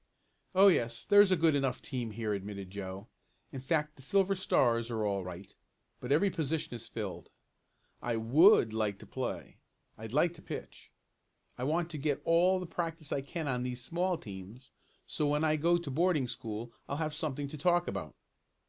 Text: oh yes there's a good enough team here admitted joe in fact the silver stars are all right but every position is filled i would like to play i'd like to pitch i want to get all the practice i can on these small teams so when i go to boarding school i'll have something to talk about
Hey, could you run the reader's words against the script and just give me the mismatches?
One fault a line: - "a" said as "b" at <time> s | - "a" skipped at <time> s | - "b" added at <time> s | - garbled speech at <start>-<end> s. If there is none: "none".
none